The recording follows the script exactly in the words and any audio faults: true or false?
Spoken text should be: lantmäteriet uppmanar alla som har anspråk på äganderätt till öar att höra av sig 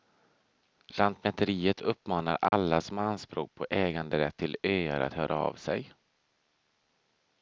false